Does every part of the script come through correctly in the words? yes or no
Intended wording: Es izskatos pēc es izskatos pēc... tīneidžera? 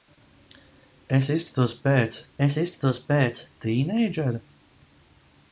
yes